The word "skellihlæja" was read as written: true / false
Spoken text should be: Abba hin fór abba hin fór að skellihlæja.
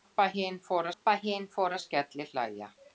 true